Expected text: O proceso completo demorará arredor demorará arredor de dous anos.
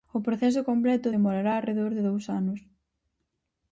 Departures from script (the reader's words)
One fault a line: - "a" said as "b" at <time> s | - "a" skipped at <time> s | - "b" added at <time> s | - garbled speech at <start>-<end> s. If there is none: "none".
- "demorará arredor" skipped at 1.9 s